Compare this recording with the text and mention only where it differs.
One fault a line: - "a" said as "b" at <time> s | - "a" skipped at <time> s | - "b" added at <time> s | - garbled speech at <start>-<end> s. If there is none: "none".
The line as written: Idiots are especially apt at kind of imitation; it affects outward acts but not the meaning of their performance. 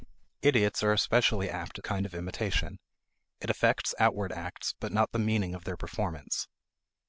none